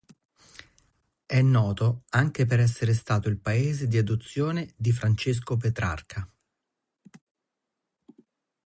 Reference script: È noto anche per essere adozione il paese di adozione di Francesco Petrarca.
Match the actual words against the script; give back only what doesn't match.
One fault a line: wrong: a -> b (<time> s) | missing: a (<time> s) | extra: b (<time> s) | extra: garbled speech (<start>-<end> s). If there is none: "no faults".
wrong: adozione -> stato (3.0 s)